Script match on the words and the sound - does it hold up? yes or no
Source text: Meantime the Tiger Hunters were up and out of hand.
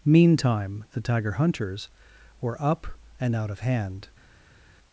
yes